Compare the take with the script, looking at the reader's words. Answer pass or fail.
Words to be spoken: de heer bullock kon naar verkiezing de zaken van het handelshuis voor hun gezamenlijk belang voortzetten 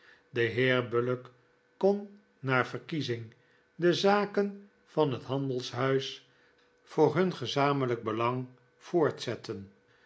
pass